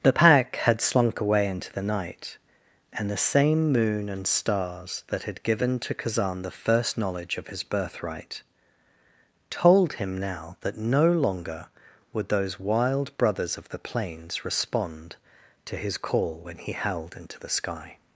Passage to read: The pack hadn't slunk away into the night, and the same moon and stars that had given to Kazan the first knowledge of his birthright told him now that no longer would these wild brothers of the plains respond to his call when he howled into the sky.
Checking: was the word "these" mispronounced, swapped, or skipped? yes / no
yes